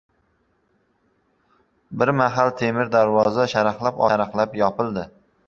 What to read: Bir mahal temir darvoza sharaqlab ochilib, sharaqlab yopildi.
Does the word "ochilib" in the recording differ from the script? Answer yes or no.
yes